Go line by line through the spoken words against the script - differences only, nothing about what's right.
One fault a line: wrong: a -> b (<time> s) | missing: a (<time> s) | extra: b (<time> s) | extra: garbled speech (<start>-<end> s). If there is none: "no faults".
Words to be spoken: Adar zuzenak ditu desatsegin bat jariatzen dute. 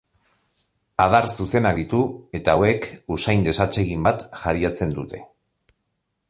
extra: eta hauek usain (2.4 s)